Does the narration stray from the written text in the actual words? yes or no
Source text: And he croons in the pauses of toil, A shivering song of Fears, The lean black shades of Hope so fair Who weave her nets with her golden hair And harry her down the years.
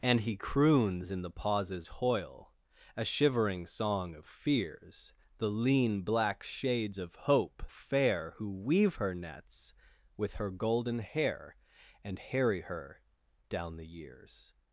yes